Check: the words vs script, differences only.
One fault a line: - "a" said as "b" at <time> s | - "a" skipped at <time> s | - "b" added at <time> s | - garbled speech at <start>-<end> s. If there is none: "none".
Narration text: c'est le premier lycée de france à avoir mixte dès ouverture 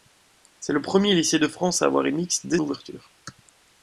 none